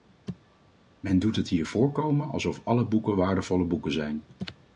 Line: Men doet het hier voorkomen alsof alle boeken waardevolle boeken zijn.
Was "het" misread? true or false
false